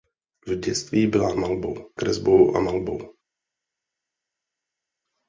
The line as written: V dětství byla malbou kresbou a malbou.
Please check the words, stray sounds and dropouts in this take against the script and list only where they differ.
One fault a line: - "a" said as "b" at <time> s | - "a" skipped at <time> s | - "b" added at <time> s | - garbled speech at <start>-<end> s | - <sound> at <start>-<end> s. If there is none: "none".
none